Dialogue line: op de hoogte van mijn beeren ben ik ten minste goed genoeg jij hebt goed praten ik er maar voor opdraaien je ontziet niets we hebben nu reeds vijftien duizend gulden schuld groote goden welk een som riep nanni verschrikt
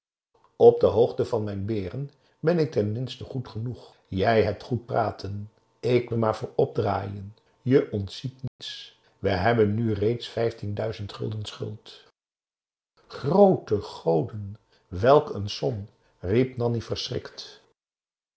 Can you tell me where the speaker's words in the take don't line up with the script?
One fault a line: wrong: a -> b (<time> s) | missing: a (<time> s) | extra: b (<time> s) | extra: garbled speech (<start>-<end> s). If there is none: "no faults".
no faults